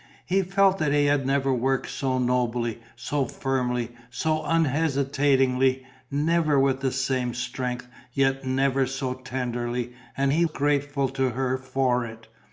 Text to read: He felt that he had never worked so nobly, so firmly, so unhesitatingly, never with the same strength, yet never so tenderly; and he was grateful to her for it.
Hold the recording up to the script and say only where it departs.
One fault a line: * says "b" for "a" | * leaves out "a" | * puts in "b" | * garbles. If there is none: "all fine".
* leaves out "was"